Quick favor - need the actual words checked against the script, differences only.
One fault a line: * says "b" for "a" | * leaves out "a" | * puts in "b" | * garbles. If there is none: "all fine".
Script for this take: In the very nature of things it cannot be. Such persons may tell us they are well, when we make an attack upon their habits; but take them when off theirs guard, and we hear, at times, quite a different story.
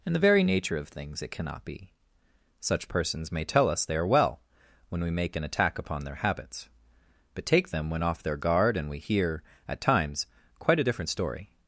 * says "their" for "theirs"